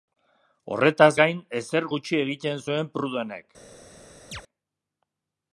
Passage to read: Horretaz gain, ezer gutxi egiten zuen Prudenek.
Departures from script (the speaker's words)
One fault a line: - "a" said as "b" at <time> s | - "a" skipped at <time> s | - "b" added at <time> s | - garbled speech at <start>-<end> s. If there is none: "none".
none